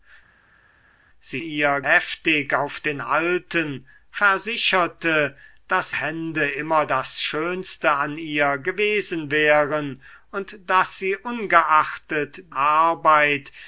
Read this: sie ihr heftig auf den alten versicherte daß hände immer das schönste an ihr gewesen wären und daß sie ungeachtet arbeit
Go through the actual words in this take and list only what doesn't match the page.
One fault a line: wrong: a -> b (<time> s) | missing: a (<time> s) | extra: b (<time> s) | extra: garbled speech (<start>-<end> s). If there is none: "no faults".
no faults